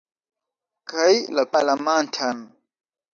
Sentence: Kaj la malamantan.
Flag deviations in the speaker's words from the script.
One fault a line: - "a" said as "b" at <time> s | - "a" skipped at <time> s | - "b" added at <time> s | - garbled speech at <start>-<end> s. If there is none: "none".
none